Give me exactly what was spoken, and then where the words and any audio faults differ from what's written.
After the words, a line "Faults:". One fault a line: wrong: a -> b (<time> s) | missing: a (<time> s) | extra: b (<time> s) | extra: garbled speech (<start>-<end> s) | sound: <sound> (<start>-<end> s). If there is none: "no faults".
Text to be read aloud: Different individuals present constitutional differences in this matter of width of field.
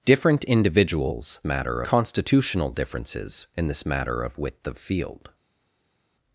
Different individuals matter constitutional differences in this matter of width of field.
Faults:
wrong: present -> matter (1.4 s)